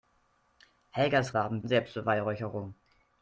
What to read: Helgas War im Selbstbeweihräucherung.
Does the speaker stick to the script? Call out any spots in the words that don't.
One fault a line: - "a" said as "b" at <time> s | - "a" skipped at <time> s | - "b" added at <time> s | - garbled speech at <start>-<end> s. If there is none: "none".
none